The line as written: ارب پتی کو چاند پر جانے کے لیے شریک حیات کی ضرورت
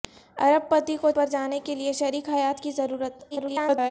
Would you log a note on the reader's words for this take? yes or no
yes